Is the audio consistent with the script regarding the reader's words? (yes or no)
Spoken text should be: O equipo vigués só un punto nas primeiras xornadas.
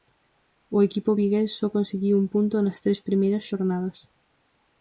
no